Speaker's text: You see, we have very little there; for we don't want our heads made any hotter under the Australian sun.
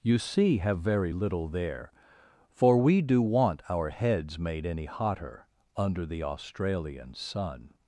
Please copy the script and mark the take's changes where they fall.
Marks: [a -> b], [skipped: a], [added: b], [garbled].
You see, [skipped: we] have very little there; for we [don't -> do] want our heads made any hotter under the Australian sun.